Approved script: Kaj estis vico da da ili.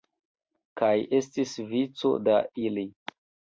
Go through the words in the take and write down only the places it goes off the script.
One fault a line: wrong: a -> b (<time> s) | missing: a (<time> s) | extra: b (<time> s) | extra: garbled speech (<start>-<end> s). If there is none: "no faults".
missing: da (2.4 s)